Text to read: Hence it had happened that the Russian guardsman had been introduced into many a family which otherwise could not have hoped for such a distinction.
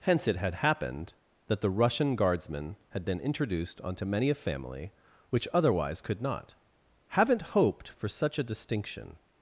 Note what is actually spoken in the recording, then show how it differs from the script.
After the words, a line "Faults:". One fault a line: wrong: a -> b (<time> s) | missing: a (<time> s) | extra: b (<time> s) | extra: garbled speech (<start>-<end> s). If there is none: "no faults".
Hence it had happened that the Russian guardsman had been introduced onto many a family which otherwise could not haven't hoped for such a distinction.
Faults:
wrong: into -> onto (3.8 s)
wrong: have -> haven't (7.1 s)